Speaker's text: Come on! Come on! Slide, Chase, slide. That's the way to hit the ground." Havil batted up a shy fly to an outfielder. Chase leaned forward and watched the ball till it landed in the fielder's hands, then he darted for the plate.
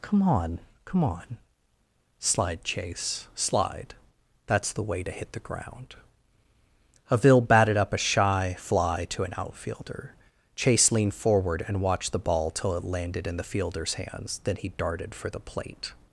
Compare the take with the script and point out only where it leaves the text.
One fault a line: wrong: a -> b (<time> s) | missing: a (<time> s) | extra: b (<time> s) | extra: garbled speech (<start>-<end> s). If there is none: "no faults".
no faults